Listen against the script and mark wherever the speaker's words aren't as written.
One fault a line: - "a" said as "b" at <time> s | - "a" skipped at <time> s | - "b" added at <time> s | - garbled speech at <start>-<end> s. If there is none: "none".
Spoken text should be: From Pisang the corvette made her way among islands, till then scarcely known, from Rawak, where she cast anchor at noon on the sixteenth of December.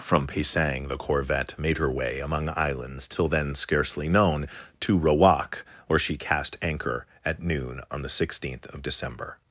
- "from" said as "to" at 4.8 s